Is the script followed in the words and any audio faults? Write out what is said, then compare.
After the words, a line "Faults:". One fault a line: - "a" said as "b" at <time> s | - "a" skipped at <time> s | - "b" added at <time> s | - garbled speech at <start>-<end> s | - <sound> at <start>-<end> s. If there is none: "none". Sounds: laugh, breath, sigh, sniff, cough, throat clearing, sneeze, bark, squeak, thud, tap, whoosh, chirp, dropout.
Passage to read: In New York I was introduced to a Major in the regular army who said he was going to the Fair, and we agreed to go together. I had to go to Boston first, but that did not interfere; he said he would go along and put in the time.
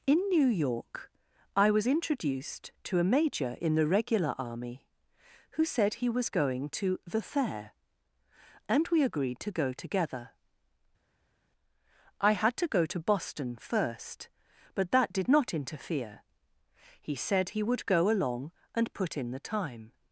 In New York I was introduced to a Major in the regular army who said he was going to the Fair, and we agreed to go together. I had to go to Boston first, but that did not interfere; he said he would go along and put in the time.
Faults:
none